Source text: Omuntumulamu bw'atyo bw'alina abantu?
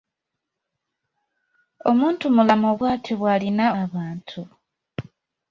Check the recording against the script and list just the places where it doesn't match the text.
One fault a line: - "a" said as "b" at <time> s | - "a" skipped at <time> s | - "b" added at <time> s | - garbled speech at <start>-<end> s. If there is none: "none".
none